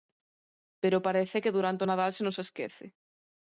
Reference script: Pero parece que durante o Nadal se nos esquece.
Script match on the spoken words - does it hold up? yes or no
yes